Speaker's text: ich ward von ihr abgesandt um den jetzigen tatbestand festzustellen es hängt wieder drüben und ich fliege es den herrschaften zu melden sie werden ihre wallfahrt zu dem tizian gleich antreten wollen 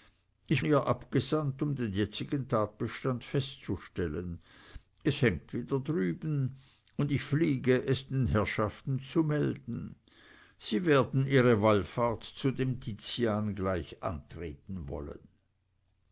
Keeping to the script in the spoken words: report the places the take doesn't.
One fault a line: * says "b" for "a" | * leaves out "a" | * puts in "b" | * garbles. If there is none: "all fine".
* leaves out "ward von"